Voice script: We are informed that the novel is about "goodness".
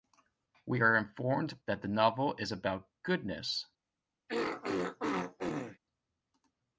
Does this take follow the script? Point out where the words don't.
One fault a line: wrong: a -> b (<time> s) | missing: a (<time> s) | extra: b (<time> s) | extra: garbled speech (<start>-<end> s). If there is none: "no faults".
no faults